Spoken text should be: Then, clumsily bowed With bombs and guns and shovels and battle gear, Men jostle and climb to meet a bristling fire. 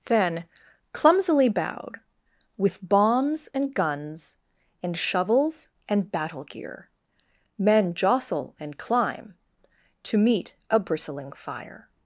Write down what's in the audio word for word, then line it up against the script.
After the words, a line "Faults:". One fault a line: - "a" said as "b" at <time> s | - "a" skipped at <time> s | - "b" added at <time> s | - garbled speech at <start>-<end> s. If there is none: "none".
Then, clumsily bowed With bombs and guns and shovels and battle gear, Men jostle and climb to meet a bristling fire.
Faults:
none